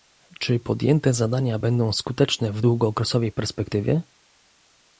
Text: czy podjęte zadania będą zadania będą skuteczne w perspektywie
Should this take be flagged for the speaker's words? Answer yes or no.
yes